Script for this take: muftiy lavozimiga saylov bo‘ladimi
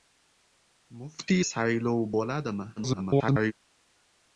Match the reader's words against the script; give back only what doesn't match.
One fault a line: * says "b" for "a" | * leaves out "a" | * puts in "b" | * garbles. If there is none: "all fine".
* leaves out "lavozimiga"
* garbles